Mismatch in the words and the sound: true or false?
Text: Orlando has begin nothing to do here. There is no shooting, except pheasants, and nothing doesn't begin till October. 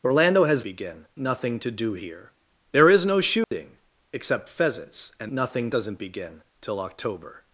true